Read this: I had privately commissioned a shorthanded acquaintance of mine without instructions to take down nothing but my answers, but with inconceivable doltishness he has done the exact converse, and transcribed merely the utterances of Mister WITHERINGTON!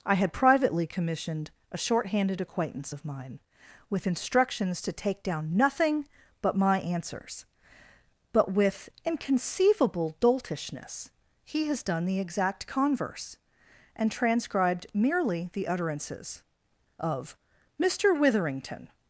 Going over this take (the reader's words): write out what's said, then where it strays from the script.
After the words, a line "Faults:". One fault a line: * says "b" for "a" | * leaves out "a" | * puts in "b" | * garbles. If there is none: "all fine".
I had privately commissioned a shorthanded acquaintance of mine with instructions to take down nothing but my answers, but with inconceivable doltishness he has done the exact converse, and transcribed merely the utterances of Mister WITHERINGTON!
Faults:
* says "with" for "without"